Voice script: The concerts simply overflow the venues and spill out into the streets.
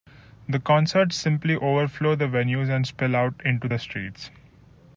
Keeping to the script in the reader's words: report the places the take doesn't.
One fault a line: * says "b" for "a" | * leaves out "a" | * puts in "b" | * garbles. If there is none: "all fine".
all fine